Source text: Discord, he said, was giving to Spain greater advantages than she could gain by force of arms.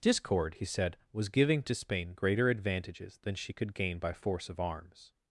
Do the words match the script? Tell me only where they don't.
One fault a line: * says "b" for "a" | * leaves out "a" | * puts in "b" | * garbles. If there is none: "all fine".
all fine